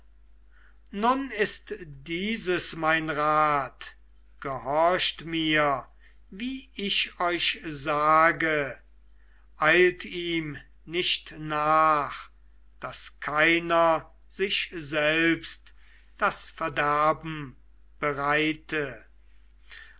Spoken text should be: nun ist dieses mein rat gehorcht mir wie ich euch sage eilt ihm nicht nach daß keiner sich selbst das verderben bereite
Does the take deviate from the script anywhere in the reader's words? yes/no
no